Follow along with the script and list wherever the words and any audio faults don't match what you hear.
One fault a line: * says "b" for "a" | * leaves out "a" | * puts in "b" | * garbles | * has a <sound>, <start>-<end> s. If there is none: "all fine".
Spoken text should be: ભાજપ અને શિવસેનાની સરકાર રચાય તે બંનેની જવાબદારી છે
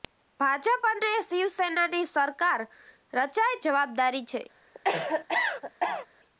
* leaves out "તે બંનેની"
* has a cough, 4.7-6.1 s